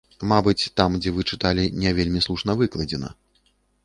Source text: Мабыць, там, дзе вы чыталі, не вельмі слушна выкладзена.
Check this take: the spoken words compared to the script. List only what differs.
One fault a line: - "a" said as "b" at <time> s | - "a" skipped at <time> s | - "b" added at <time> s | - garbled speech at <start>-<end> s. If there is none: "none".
none